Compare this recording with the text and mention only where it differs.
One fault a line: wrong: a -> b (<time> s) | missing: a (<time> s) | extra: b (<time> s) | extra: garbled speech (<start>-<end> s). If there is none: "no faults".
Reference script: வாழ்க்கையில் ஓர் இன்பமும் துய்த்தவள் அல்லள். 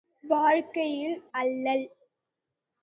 missing: ஓர் இன்பமும் துய்த்தவள் (1.2 s)